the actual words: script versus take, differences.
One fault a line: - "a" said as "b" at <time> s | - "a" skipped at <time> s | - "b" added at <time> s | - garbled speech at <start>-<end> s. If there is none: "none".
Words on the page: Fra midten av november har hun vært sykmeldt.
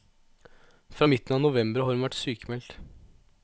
none